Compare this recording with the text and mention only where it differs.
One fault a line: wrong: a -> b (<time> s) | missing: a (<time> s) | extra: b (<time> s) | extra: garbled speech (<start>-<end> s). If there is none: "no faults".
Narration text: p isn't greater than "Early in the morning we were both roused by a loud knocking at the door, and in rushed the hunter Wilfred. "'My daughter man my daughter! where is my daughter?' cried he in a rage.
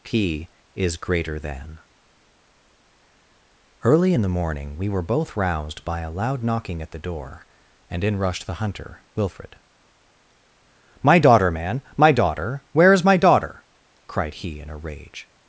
wrong: isn't -> is (0.7 s)